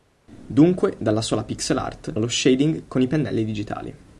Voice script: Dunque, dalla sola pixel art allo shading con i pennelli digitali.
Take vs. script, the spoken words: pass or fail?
pass